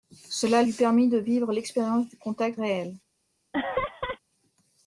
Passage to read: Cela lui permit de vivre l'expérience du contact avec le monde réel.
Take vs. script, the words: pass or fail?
fail